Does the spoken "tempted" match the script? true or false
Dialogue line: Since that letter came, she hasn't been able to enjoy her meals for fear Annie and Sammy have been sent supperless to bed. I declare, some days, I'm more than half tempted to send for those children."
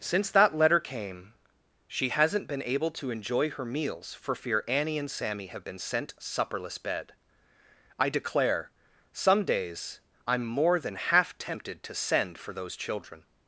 true